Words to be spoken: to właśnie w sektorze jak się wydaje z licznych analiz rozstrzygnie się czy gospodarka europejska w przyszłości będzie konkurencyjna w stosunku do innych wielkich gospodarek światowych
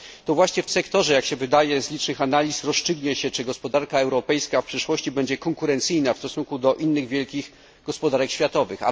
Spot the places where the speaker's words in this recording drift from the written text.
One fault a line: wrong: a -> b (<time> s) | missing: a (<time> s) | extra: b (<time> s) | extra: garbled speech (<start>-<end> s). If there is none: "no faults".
no faults